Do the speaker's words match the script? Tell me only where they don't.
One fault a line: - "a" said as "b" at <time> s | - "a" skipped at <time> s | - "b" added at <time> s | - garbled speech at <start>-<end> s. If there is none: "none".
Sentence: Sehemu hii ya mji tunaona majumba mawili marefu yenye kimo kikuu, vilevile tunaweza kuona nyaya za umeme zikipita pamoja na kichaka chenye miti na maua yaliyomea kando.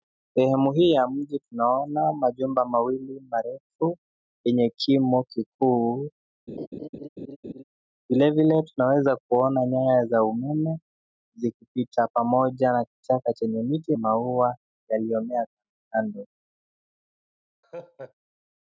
- "na" skipped at 13.9 s